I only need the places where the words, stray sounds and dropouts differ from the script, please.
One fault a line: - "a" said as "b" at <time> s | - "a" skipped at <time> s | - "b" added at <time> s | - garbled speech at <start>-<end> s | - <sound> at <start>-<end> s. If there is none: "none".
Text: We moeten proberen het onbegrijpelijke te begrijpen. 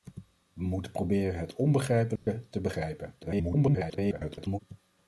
- dropout at 2.2-2.3 s
- garbled speech at 3.2-4.6 s